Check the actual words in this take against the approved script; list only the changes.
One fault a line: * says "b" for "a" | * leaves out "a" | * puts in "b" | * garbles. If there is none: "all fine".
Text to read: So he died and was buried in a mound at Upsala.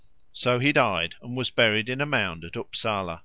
all fine